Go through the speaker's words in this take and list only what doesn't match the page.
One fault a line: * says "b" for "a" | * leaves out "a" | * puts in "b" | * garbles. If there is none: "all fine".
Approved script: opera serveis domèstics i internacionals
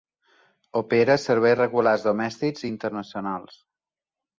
* puts in "regulars"